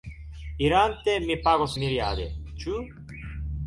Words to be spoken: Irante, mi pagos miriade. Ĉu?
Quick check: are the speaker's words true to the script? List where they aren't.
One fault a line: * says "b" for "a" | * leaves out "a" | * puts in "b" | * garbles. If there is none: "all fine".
all fine